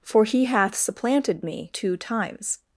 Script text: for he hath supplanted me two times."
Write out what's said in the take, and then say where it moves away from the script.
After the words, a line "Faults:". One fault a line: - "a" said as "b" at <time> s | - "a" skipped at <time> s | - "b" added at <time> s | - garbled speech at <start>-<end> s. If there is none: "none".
for he hath supplanted me two times."
Faults:
none